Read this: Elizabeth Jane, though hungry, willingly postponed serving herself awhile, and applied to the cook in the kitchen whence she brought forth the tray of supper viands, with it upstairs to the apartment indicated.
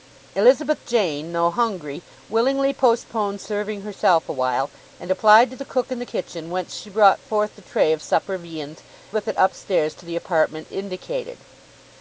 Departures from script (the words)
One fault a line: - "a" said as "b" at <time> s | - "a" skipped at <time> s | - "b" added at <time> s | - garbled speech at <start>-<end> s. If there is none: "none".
none